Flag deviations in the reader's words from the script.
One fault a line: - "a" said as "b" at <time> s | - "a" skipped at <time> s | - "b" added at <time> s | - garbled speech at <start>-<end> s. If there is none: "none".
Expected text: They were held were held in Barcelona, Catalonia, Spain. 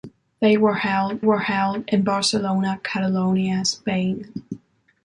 none